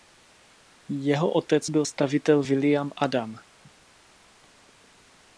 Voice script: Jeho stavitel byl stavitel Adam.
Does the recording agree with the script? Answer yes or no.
no